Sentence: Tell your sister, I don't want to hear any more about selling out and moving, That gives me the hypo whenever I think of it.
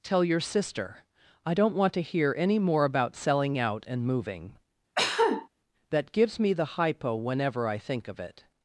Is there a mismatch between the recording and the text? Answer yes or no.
no